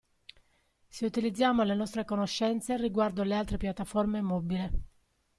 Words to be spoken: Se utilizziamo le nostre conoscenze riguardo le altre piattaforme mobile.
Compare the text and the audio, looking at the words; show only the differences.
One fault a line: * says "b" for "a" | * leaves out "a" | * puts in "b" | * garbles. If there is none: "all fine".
all fine